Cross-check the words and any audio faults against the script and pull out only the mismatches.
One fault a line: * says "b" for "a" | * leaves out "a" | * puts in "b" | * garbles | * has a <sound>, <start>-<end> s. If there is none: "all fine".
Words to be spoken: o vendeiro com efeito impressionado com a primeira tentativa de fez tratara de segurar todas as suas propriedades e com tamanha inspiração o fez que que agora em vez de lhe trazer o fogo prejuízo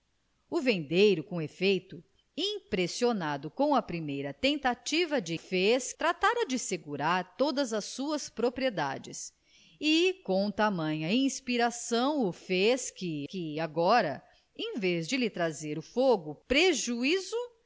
all fine